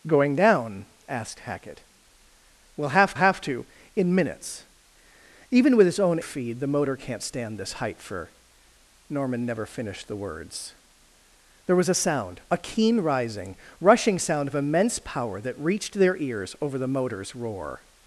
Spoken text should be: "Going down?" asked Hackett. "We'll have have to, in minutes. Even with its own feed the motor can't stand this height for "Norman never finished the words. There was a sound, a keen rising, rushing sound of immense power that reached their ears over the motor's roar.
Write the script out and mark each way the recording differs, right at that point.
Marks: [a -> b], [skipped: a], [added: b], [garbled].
"Going down?" asked Hackett. "We'll have have to, in minutes. Even with its own feed the motor can't stand this height for "Norman never finished the words. There was a sound, a keen rising, rushing sound of immense power that reached their ears over the motor's roar.